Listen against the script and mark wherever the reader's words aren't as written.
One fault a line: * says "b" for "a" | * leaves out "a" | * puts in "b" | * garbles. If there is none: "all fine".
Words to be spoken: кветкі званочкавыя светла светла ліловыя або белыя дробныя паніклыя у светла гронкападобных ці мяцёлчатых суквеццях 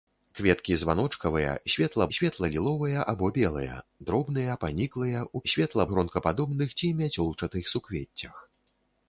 all fine